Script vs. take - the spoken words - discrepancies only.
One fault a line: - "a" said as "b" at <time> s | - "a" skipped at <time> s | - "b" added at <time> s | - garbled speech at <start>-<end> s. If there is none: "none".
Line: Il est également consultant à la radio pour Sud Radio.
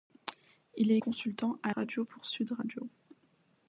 - "également" skipped at 1.0 s
- "la" skipped at 1.7 s